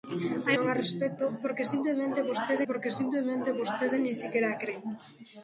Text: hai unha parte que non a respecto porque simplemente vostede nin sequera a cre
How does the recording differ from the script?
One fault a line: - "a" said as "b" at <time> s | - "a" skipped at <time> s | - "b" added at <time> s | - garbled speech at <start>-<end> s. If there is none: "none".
- "unha parte que non a respecto" said as "non a respecto porque simplemente vostede" at 0.6 s